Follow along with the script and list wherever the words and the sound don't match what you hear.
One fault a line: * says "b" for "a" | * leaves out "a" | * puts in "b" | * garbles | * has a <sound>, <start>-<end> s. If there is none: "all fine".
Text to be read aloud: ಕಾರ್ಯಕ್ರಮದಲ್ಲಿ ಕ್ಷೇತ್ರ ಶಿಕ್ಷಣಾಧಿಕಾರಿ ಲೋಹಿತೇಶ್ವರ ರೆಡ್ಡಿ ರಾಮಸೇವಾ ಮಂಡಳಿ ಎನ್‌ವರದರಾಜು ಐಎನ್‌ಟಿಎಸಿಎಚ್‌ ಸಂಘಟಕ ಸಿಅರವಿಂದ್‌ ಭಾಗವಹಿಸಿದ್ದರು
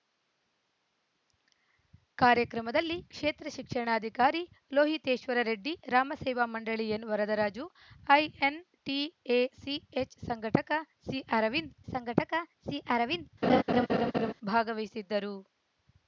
* puts in "ಸಂಘಟಕ ಸಿಅರವಿಂದ್"
* has a laugh, 13.4-14.3 s